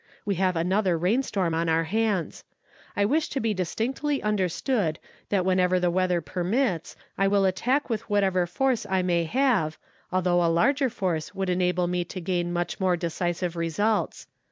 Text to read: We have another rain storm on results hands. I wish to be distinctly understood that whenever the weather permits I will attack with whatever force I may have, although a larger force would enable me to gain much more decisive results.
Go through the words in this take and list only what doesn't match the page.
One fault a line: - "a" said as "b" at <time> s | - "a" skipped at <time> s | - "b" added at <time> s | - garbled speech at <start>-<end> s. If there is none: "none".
- "results" said as "our" at 1.7 s